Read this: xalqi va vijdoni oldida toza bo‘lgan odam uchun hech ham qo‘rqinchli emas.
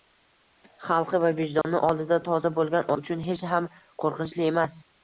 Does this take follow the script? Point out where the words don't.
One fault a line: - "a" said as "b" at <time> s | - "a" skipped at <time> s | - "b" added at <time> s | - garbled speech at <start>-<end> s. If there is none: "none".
- "odam" skipped at 2.9 s